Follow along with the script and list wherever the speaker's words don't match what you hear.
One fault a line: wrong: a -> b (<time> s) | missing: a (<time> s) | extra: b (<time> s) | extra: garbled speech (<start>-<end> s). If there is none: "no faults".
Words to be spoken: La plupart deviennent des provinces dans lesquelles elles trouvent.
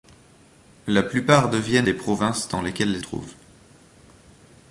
no faults